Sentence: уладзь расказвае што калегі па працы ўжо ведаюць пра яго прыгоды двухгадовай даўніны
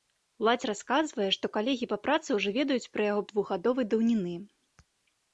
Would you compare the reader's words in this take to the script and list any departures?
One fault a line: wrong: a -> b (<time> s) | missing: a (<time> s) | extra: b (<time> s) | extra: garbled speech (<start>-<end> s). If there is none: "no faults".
missing: прыгоды (3.2 s)